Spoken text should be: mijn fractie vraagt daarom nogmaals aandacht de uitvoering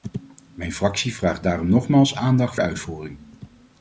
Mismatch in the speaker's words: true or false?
false